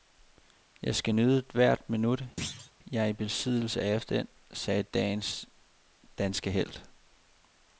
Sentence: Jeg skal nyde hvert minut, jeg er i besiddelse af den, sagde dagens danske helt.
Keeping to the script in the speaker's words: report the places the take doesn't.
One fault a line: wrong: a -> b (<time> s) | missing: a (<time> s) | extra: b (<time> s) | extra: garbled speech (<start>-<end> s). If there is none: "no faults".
no faults